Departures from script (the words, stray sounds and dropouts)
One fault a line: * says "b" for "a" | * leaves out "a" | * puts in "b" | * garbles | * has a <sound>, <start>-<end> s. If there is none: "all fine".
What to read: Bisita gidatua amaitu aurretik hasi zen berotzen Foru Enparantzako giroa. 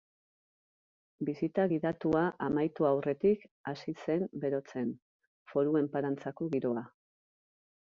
all fine